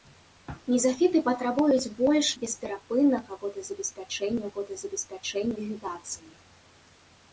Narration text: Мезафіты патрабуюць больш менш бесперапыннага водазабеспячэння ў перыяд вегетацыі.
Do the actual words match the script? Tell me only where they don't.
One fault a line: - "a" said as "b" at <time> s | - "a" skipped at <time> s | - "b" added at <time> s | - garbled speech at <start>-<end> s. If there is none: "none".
- "менш" skipped at 2.3 s
- "перыяд" said as "водазабеспячэння" at 4.5 s